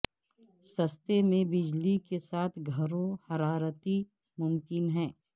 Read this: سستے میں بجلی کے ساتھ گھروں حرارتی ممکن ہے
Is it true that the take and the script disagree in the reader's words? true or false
false